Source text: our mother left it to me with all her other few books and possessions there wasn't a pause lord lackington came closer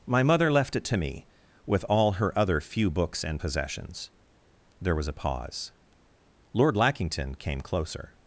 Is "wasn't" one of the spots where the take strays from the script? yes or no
yes